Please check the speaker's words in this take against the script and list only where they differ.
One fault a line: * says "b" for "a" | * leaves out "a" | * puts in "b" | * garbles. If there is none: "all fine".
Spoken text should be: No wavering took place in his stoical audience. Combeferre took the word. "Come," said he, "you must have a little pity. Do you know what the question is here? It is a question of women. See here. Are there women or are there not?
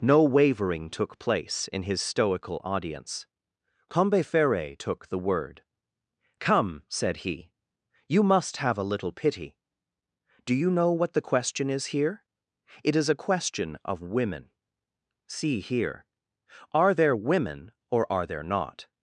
all fine